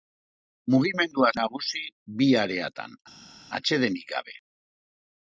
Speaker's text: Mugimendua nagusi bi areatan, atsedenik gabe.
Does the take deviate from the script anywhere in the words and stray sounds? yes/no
no